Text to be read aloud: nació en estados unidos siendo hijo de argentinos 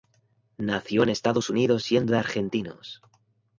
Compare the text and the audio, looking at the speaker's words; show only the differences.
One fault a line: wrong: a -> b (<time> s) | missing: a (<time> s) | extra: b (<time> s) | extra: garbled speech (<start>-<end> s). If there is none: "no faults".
missing: hijo (2.1 s)